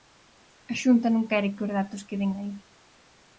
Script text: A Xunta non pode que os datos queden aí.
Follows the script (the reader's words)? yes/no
no